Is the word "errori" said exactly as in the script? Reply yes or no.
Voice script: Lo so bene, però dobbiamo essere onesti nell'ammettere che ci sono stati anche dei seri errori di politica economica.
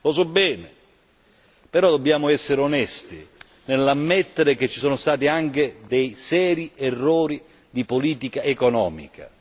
yes